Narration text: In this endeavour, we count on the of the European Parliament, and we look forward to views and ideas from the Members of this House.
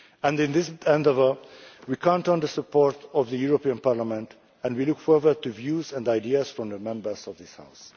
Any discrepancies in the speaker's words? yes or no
yes